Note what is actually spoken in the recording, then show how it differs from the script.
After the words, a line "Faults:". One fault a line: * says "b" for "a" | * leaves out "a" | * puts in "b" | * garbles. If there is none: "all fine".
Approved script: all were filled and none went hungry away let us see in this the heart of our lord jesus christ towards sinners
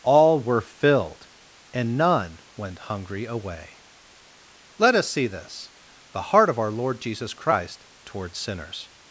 all were filled and none went hungry away let us see this the heart of our lord jesus christ towards sinners
Faults:
* leaves out "in"